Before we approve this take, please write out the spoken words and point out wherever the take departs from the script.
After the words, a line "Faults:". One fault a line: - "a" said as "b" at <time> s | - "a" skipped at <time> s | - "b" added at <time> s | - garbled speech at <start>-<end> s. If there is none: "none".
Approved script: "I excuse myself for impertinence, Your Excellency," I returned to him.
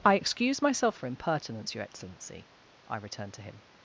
"I excuse myself for impertinence, Your Excellency," I returned to him.
Faults:
none